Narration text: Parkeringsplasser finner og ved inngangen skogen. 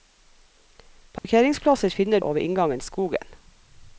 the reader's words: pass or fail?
pass